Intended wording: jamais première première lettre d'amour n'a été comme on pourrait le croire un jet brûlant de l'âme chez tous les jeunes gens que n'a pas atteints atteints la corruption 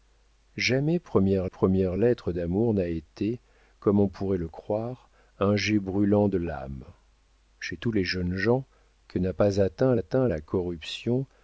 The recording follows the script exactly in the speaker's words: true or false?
true